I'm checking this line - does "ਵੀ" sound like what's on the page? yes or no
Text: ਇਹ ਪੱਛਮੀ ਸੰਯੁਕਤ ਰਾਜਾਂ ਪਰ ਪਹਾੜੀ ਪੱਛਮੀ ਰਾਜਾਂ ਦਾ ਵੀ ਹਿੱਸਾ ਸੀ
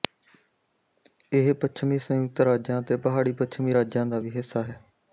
yes